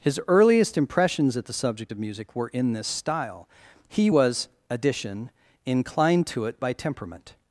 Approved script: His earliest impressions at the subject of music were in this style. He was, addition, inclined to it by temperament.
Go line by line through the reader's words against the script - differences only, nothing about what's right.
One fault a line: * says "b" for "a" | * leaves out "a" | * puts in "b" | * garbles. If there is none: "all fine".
all fine